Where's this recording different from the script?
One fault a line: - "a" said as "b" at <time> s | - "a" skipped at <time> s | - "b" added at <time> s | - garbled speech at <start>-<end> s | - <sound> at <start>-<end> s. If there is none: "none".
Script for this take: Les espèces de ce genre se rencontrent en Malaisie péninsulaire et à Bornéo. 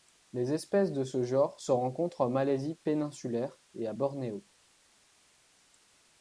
none